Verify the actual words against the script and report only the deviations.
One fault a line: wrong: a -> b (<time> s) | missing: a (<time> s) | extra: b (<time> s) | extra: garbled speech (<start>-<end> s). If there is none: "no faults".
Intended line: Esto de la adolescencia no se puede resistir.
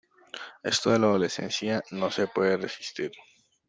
no faults